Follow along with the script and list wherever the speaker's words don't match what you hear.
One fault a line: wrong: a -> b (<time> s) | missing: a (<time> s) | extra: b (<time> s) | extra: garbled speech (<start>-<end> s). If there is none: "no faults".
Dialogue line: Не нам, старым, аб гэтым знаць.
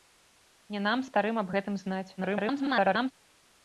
extra: garbled speech (2.2-3.1 s)